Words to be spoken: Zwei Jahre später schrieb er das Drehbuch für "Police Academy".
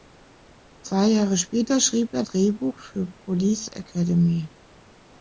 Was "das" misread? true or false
true